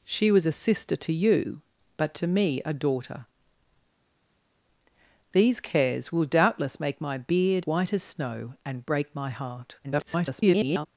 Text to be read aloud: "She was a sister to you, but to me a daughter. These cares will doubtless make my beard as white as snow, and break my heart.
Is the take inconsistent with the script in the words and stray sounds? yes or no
yes